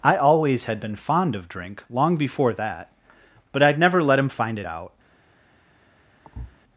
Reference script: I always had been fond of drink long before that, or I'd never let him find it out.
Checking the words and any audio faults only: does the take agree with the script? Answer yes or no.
no